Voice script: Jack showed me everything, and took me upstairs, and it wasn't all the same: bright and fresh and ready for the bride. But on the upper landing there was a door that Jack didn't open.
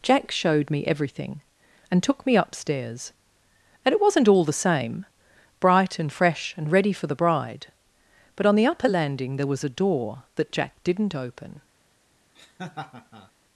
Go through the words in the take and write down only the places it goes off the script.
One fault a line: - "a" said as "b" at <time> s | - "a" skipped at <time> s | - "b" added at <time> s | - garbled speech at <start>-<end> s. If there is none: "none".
none